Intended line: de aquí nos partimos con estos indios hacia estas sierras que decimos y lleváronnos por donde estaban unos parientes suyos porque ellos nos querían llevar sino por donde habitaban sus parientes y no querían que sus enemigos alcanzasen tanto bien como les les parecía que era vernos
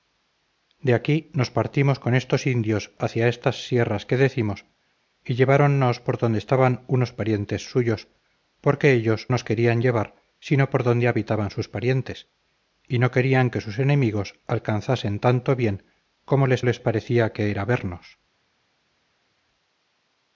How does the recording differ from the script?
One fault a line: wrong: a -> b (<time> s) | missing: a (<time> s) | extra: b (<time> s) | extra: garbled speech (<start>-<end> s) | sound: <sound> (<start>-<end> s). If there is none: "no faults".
no faults